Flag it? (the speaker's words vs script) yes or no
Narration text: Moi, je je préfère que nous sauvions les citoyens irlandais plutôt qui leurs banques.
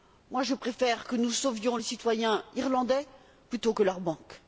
yes